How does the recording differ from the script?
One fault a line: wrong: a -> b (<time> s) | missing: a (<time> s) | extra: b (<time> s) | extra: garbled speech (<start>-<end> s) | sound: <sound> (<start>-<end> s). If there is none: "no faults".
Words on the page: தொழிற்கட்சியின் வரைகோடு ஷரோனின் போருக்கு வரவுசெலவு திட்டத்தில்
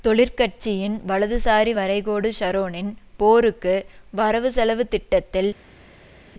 extra: வலதுசாரி (1.1 s)